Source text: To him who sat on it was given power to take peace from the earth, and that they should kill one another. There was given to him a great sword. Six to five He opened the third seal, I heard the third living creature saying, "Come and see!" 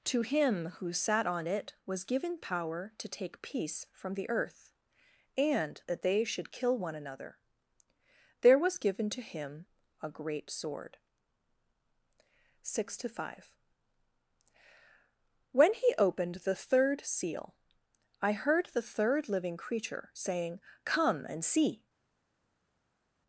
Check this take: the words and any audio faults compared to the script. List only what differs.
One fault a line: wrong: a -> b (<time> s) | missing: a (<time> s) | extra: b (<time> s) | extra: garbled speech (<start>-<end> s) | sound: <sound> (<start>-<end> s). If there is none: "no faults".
extra: When (15.5 s)